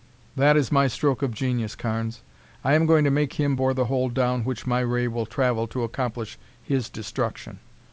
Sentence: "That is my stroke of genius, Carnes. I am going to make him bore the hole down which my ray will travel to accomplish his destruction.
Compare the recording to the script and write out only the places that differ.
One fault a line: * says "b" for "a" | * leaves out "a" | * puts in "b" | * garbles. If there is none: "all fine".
all fine